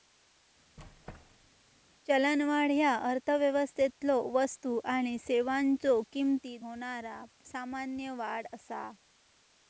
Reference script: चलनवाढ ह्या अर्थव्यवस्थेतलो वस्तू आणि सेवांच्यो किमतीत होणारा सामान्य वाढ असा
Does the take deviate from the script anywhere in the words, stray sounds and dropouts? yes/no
yes